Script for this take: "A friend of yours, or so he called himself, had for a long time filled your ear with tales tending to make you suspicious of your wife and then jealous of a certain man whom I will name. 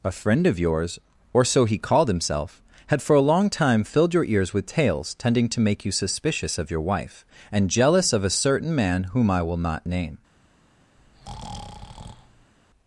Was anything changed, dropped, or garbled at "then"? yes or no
yes